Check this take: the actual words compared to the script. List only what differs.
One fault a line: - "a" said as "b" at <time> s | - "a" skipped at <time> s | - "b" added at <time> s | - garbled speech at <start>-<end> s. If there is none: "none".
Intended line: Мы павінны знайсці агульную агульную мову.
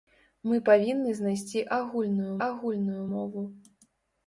none